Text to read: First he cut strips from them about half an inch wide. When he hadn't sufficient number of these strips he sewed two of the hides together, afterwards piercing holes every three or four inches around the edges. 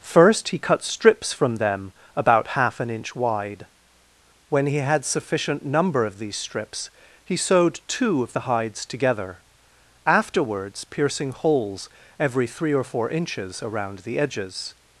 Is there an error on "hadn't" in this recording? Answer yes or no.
yes